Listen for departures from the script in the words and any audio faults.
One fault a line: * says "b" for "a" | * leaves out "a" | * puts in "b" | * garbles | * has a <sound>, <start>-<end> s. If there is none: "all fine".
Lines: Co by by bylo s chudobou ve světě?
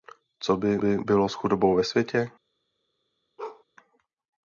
* has a bark, 3.4-3.6 s